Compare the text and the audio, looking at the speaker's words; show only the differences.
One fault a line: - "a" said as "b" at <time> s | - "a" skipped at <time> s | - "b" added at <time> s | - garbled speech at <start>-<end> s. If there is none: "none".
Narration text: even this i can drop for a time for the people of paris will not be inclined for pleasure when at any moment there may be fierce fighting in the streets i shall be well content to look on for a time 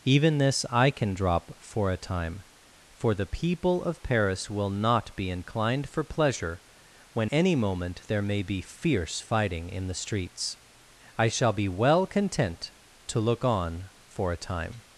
- "at" skipped at 7.3 s